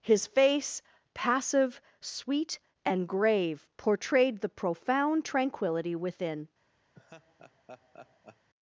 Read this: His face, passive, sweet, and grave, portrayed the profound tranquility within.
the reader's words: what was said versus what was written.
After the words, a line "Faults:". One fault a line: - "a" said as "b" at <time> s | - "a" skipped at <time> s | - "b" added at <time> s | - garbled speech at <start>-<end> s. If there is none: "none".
His face, passive, sweet, and grave, portrayed the profound tranquility within.
Faults:
none